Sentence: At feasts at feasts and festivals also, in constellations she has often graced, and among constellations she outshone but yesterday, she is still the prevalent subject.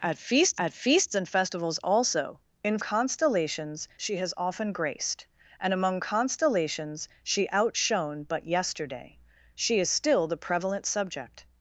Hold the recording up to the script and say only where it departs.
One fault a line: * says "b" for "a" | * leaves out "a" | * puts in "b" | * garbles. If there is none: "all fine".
all fine